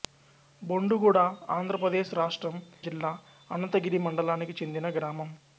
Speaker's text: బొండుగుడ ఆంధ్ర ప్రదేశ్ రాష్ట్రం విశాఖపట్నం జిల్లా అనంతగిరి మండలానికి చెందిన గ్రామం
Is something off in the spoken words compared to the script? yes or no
yes